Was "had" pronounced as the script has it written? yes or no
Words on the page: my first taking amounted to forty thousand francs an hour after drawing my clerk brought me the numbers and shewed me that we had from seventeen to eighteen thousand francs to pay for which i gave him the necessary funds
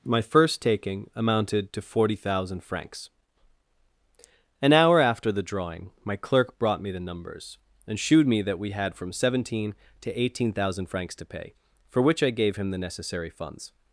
yes